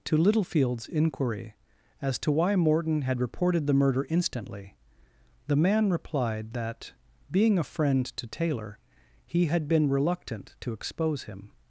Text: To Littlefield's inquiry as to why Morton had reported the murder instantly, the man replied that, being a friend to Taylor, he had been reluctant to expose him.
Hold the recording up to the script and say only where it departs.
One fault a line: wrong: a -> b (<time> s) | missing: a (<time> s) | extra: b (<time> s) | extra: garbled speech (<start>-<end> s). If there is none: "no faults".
no faults